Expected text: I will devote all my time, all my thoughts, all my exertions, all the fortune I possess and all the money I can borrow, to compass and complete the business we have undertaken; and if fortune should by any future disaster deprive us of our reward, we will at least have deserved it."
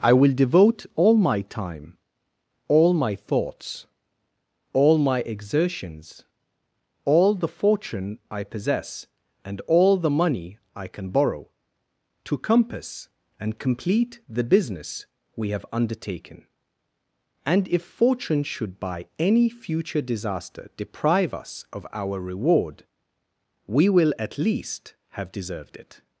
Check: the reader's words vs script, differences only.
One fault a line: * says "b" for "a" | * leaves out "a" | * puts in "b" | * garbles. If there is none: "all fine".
all fine